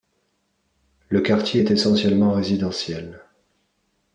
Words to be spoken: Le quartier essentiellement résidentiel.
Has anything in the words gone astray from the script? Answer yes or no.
yes